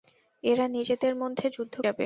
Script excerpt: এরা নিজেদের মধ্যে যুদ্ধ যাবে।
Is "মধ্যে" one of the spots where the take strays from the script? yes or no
no